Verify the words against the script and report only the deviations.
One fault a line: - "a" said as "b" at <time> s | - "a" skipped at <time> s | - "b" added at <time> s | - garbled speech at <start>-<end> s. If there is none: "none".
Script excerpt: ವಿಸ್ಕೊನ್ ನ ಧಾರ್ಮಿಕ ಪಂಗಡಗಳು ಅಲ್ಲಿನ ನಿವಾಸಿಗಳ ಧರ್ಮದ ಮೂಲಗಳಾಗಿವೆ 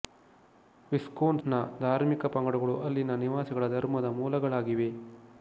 none